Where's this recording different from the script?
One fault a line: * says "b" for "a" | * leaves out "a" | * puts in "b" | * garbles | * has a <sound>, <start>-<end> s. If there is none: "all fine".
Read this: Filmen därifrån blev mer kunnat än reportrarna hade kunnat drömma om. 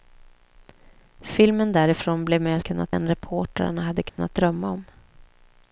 * has a dropout, 4.1-4.2 s